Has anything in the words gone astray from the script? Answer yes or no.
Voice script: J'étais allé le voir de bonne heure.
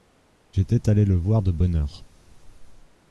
no